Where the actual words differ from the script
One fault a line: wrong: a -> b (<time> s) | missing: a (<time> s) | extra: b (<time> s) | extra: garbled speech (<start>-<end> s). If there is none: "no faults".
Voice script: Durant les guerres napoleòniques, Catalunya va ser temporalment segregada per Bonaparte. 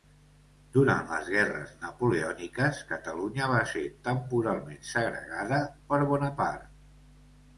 no faults